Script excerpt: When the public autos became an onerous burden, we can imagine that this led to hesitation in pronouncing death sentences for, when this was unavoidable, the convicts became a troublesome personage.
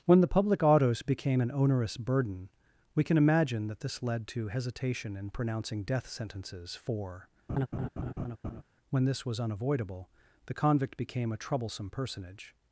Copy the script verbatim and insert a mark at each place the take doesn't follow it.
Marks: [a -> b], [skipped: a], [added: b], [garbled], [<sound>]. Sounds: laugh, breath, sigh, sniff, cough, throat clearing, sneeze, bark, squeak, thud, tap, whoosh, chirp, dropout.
When the public autos became an onerous burden, we can imagine that this led to hesitation in pronouncing death sentences for, [laugh] when this was unavoidable, the [convicts -> convict] became a troublesome personage.